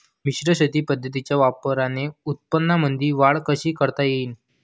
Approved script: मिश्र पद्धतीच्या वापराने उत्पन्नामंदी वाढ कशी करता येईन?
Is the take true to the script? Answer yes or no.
no